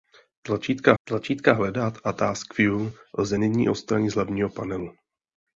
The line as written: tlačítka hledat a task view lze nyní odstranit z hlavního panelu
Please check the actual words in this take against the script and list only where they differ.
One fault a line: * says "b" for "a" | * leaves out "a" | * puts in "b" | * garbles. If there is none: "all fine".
* puts in "tlačítka"